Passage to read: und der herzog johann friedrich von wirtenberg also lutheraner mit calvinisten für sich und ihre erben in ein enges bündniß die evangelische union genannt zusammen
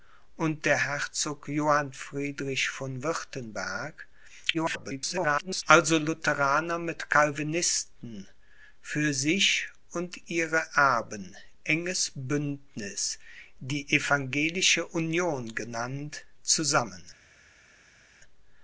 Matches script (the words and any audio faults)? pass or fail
fail